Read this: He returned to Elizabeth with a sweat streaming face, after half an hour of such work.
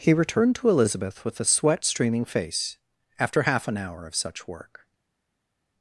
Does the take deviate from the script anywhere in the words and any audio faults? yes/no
no